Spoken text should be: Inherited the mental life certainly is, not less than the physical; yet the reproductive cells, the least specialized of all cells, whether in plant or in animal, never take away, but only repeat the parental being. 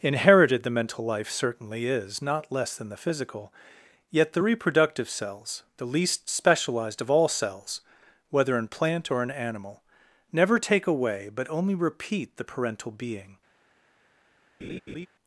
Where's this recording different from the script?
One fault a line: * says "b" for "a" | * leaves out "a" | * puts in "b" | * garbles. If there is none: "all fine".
all fine